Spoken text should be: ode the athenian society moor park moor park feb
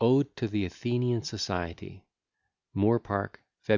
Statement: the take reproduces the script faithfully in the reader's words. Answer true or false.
false